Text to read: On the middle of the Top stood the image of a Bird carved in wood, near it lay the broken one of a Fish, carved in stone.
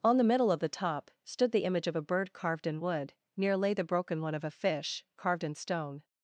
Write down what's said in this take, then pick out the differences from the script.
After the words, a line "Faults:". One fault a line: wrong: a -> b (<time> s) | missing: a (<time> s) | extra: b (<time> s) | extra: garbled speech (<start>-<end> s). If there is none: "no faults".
On the middle of the Top stood the image of a Bird carved in wood, near lay the broken one of a Fish, carved in stone.
Faults:
missing: it (3.6 s)